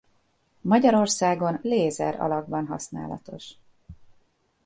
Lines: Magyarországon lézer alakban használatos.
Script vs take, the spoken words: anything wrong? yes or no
no